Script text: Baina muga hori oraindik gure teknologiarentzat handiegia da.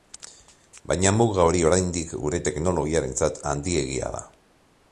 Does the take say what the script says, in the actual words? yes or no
yes